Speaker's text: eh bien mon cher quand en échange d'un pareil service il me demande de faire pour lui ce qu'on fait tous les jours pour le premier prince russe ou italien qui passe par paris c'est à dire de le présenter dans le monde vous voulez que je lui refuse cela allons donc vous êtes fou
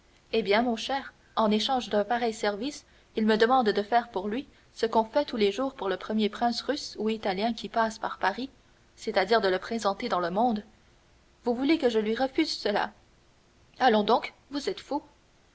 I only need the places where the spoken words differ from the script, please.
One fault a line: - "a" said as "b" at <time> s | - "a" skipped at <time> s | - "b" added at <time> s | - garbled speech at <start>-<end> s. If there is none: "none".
- "quand" skipped at 1.1 s